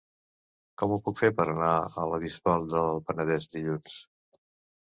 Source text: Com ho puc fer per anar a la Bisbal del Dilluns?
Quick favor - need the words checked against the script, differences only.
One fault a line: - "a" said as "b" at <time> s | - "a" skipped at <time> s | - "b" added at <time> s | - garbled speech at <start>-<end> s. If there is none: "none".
- "Penedès" added at 3.1 s